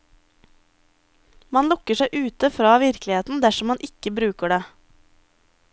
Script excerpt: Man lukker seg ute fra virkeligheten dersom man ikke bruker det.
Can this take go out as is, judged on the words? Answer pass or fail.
pass